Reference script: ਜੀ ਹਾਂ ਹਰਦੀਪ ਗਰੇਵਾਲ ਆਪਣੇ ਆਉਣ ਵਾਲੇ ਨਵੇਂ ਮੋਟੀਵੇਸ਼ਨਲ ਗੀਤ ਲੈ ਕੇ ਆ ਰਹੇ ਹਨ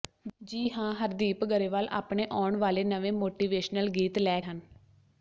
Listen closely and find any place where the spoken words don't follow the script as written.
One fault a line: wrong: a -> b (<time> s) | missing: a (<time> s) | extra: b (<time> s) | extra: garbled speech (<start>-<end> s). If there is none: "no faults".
missing: ਕੇ ਆ ਰਹੇ (4.4 s)